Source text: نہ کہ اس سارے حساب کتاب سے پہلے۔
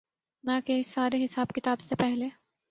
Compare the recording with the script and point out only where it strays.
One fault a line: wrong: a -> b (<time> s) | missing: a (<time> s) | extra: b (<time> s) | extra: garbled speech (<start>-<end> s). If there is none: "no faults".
no faults